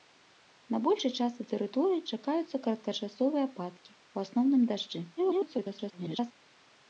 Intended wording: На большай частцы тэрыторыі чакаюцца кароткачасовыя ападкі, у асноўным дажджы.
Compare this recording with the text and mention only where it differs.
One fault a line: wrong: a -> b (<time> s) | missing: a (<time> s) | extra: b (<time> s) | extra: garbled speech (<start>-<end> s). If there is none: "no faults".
extra: garbled speech (5.2-6.3 s)